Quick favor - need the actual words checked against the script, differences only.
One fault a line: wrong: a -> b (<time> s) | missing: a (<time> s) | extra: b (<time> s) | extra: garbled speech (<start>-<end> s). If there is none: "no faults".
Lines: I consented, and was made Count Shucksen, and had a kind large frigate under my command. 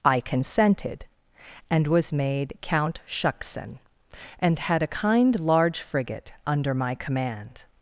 no faults